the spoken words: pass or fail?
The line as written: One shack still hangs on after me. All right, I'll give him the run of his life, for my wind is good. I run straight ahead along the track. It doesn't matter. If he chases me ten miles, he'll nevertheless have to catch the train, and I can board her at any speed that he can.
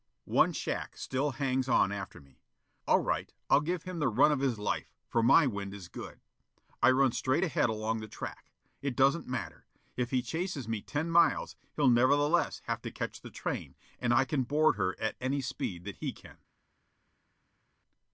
pass